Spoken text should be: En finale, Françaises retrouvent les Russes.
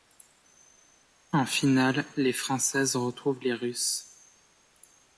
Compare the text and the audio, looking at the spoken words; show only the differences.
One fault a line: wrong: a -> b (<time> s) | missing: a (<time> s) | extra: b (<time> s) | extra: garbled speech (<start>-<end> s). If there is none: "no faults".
extra: les (2.2 s)